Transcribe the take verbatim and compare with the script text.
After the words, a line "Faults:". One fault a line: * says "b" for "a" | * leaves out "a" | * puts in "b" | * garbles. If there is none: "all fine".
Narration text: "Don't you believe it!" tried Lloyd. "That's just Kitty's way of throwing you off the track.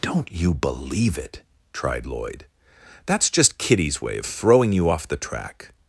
"Don't you believe it!" tried Lloyd. "That's just Kitty's way of throwing you off the track.
Faults:
all fine